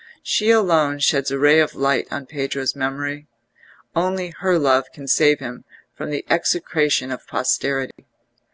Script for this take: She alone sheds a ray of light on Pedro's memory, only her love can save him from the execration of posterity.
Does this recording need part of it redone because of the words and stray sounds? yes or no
yes